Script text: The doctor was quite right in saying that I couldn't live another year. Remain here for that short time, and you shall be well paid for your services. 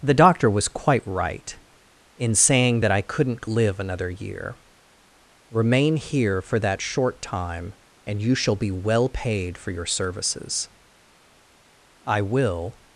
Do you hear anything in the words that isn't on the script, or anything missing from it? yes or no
yes